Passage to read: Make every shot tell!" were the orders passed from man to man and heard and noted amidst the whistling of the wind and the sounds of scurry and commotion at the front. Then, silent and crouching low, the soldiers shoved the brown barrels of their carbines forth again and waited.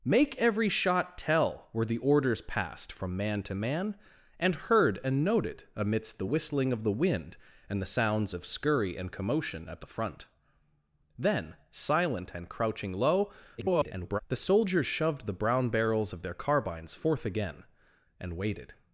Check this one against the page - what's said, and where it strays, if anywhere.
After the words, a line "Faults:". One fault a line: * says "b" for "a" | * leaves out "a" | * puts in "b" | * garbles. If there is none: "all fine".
Make every shot tell!" were the orders passed from man to man and heard and noted amidst the whistling of the wind and the sounds of scurry and commotion at the front. Then, silent and crouching low, [garbled] the soldiers shoved the brown barrels of their carbines forth again and waited.
Faults:
* garbles